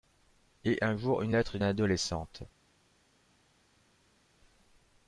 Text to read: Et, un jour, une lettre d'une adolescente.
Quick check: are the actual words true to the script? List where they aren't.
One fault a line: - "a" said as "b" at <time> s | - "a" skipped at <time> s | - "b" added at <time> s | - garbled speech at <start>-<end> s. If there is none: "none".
none